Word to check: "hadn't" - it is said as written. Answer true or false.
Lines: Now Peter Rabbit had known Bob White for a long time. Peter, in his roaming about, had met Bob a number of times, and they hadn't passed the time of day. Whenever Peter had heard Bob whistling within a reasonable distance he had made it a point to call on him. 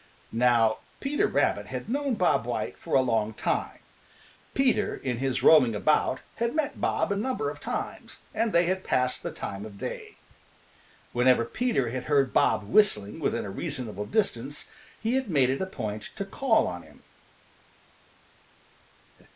false